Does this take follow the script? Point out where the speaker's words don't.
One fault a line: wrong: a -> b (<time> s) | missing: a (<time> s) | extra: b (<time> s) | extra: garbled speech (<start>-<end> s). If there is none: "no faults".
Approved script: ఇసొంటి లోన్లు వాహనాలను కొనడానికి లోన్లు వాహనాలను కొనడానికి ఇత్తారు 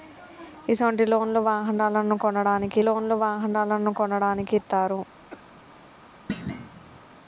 no faults